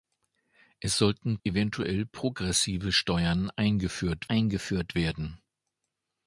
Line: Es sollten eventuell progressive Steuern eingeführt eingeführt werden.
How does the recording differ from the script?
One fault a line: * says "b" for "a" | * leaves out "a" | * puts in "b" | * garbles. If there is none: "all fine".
all fine